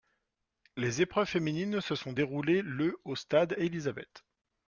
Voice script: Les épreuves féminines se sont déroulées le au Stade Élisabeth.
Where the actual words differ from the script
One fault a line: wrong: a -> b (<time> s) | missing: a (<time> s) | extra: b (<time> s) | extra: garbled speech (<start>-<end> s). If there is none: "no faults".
no faults